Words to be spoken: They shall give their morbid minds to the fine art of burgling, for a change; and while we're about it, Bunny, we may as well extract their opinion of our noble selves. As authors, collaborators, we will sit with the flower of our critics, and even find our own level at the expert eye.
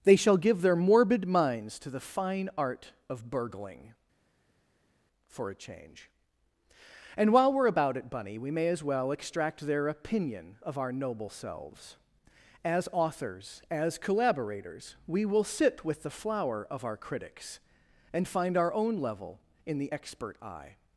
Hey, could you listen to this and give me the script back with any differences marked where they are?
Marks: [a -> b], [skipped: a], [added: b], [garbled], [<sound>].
They shall give their morbid minds to the fine art of burgling, for a change; and while we're about it, Bunny, we may as well extract their opinion of our noble selves. As authors, [added: as] collaborators, we will sit with the flower of our critics, and [skipped: even] find our own level [at -> in] the expert eye.